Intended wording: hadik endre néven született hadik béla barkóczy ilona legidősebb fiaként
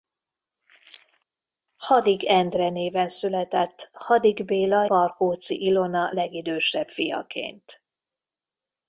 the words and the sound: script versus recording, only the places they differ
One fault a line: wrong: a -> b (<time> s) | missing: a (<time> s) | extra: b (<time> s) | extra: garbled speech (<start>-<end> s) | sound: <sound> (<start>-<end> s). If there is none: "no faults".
no faults